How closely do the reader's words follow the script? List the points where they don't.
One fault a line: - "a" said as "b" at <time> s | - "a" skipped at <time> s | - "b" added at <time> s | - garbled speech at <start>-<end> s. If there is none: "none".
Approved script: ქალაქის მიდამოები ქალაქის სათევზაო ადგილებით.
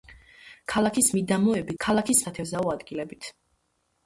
none